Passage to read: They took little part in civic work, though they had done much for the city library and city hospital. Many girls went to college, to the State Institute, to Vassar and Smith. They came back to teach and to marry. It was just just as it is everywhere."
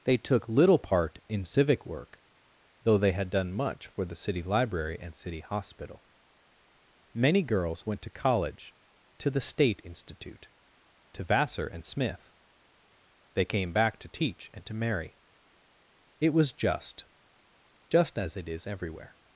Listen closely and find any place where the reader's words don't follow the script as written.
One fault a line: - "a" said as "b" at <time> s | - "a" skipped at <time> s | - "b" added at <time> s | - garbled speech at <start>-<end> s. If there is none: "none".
none